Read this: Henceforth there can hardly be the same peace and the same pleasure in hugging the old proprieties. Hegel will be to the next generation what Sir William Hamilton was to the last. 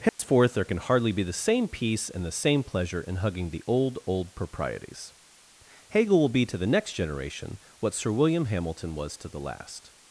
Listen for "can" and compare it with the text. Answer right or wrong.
right